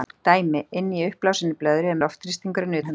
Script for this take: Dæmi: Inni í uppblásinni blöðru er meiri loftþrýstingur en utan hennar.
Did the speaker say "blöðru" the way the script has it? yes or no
yes